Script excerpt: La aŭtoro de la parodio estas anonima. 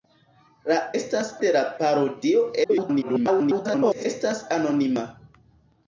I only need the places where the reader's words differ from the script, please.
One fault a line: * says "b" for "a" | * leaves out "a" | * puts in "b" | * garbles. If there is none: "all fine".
* says "estas" for "aŭtoro"
* garbles